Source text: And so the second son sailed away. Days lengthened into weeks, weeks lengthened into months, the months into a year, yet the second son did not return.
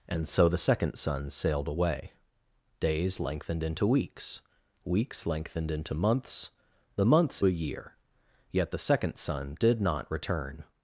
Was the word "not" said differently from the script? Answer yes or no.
no